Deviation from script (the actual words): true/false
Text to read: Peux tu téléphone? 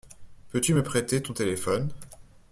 true